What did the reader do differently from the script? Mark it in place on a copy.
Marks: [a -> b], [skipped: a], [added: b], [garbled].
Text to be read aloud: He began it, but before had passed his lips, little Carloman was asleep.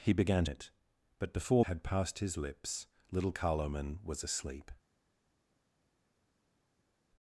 He began it, but before had passed his lips, little Carloman was asleep.